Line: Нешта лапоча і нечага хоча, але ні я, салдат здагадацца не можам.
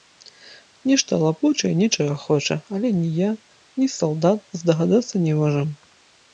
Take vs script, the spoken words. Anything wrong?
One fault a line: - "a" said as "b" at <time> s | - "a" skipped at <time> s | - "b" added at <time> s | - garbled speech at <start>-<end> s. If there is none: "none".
- "ні" added at 3.8 s